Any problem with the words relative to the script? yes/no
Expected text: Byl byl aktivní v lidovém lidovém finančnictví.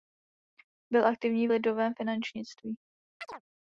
yes